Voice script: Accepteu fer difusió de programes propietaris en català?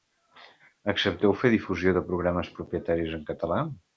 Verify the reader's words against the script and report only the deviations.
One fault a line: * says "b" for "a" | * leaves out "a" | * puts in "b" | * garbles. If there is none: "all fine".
all fine